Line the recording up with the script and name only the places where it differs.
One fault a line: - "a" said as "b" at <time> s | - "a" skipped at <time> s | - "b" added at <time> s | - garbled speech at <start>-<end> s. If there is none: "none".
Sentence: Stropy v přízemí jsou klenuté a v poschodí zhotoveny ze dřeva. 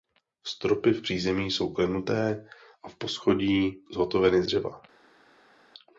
- "ze" skipped at 4.4 s